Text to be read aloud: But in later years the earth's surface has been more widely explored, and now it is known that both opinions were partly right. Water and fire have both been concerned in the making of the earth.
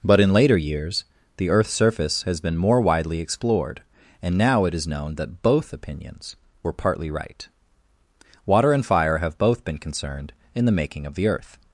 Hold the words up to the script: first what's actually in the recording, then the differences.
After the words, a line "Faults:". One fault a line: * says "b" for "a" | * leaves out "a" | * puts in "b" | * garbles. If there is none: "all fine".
But in later years the earth's surface has been more widely explored, and now it is known that both opinions were partly right. Water and fire have both been concerned in the making of the earth.
Faults:
all fine